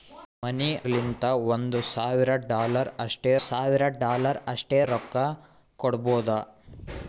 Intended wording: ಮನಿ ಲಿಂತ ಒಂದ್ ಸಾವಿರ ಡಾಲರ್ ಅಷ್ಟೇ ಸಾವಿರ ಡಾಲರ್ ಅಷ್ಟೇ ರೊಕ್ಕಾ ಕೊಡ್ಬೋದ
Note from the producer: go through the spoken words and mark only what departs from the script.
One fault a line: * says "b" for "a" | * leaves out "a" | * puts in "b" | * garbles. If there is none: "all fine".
all fine